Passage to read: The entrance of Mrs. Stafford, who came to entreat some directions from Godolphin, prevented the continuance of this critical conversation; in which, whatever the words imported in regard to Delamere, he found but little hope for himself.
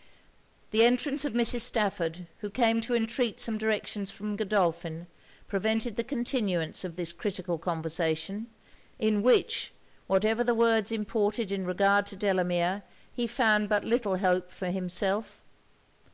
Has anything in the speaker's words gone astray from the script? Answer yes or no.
no